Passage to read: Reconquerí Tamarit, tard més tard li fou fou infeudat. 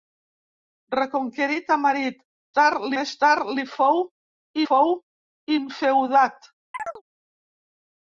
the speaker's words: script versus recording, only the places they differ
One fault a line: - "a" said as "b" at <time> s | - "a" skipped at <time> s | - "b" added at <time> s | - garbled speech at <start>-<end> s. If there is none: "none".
none